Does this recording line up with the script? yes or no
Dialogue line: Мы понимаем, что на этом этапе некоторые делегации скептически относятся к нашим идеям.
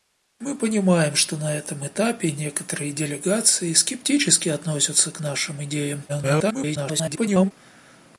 no